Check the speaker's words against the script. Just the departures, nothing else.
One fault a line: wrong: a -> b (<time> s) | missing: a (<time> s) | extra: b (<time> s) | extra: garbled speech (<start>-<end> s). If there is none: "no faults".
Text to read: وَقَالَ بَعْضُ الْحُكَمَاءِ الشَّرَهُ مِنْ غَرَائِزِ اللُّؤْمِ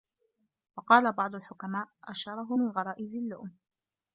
no faults